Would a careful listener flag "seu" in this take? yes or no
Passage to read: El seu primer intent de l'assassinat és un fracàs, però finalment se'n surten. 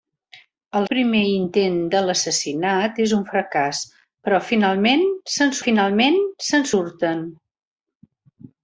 yes